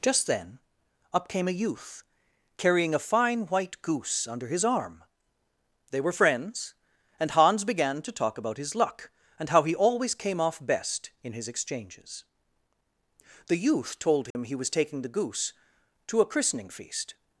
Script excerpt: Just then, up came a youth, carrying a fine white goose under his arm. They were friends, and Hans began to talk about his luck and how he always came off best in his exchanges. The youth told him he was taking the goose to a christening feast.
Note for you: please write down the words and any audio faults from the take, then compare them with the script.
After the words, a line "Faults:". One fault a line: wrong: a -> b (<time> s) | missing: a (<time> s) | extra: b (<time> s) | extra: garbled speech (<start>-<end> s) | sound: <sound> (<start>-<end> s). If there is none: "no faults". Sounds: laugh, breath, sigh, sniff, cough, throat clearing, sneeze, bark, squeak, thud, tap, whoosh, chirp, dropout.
Just then, up came a youth, carrying a fine white goose under his arm. They were friends, and Hans began to talk about his luck and how he always came off best in his exchanges. The youth told him he was taking the goose to a christening feast.
Faults:
sound: dropout (14.3-14.3 s)